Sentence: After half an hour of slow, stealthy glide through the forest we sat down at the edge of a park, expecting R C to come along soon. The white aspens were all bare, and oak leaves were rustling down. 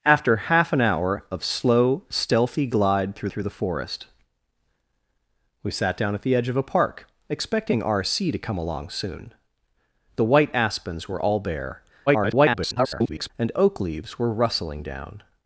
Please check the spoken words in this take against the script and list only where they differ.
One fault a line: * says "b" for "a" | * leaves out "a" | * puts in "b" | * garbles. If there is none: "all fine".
* puts in "through"
* garbles